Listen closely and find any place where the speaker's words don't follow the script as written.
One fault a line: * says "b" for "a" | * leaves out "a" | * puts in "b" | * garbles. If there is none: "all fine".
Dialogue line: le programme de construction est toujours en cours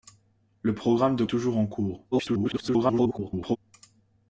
* leaves out "construction"
* garbles